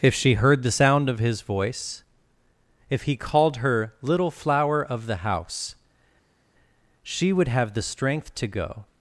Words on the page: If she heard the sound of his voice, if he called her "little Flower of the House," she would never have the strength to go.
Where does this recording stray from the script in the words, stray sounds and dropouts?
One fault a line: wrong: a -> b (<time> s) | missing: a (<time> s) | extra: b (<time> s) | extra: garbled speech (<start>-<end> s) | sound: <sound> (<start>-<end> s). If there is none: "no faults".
missing: never (7.5 s)